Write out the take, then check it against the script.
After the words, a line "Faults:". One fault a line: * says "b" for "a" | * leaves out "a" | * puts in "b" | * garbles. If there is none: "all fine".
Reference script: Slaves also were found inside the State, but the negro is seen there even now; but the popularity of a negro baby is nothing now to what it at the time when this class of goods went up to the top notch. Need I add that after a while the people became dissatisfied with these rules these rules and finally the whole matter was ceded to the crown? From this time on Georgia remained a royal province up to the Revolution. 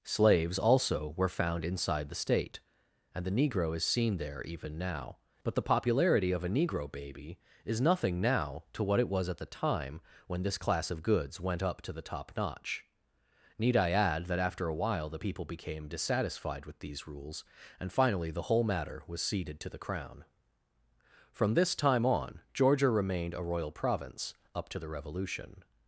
Slaves also were found inside the State, and the negro is seen there even now; but the popularity of a negro baby is nothing now to what it was at the time when this class of goods went up to the top notch. Need I add that after a while the people became dissatisfied with these rules and finally the whole matter was ceded to the crown? From this time on Georgia remained a royal province up to the Revolution.
Faults:
* says "and" for "but"
* puts in "was"
* leaves out "these rules"